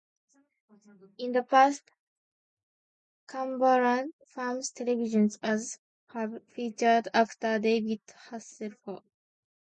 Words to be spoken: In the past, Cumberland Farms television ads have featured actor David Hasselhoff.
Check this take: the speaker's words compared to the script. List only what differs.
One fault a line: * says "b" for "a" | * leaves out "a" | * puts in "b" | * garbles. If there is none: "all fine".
all fine